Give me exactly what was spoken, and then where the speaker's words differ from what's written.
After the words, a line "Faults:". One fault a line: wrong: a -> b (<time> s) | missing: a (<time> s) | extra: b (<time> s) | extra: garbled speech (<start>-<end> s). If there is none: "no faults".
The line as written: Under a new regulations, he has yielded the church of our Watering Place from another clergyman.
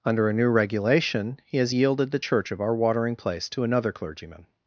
Under a new regulation, he has yielded the church of our Watering Place to another clergyman.
Faults:
wrong: regulations -> regulation (0.5 s)
wrong: from -> to (3.5 s)